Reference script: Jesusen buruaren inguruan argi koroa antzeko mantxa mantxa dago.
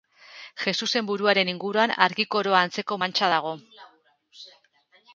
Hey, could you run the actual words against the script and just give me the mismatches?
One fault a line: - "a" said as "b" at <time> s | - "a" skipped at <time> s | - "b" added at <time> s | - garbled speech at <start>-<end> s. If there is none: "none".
- "mantxa" skipped at 3.3 s